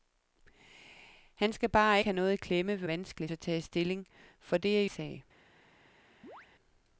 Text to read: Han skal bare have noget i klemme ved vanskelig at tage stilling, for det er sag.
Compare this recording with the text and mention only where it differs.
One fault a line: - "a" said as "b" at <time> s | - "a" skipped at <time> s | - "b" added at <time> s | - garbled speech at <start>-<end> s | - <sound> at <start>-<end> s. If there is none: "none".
- chirp at 6.2-6.5 s